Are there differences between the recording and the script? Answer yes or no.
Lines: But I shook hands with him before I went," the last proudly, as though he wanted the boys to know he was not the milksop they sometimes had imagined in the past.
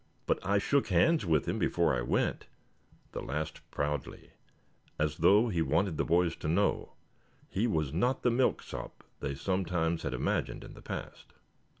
no